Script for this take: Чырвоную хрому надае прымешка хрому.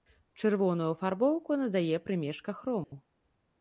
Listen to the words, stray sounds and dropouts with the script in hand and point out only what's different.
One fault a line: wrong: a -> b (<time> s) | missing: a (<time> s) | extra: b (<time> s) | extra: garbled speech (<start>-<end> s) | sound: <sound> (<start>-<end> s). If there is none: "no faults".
wrong: хрому -> афарбоўку (0.9 s)
sound: dropout (2.8-2.9 s)